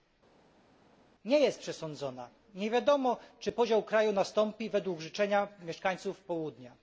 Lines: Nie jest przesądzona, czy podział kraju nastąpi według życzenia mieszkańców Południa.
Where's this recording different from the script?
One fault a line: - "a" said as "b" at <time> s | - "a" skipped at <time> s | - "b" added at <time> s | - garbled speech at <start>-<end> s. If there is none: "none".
- "nie wiadomo" added at 2.5 s